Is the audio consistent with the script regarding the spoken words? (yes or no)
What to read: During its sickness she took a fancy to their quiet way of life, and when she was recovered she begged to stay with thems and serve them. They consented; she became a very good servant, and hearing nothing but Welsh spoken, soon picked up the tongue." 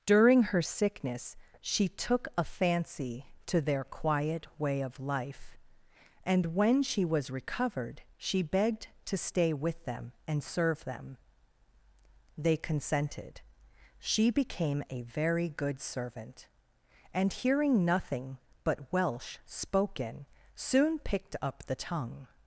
no